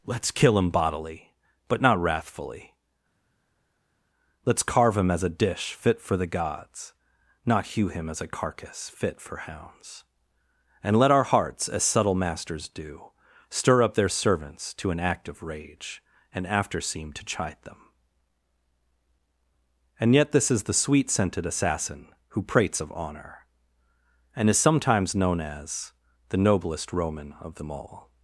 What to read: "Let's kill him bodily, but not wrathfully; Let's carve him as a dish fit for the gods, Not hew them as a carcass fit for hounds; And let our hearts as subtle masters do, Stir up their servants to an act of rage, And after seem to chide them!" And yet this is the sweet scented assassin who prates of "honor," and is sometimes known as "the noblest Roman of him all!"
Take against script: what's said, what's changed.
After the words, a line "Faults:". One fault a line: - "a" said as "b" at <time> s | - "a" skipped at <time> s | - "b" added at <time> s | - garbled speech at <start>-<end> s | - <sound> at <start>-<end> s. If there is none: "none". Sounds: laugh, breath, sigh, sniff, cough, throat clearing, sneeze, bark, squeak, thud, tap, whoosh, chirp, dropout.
"Let's kill him bodily, but not wrathfully; Let's carve him as a dish fit for the gods, Not hew him as a carcass fit for hounds; And let our hearts as subtle masters do, Stir up their servants to an act of rage, And after seem to chide them!" And yet this is the sweet scented assassin who prates of "honor," and is sometimes known as "the noblest Roman of them all!"
Faults:
- "them" said as "him" at 7.9 s
- "him" said as "them" at 27.6 s